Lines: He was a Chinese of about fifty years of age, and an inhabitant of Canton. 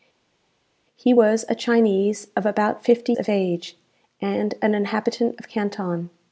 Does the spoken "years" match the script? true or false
false